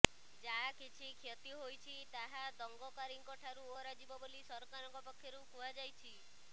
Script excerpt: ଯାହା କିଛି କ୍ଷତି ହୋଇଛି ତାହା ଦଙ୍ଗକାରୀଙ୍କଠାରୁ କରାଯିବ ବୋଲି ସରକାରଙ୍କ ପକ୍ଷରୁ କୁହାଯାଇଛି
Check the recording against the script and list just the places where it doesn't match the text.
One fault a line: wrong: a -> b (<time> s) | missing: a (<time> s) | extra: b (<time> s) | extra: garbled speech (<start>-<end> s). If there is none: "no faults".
no faults